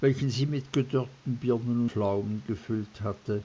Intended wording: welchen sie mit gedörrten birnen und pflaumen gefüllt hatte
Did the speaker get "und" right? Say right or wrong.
wrong